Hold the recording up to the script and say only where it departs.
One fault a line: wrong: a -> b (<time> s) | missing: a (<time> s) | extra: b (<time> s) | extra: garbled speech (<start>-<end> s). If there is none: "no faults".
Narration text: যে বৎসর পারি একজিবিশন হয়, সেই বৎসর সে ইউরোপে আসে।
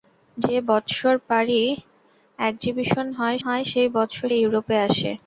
extra: হয় (3.4 s)
missing: সে (4.3 s)